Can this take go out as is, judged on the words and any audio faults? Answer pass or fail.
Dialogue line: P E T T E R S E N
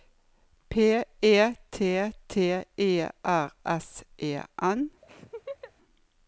fail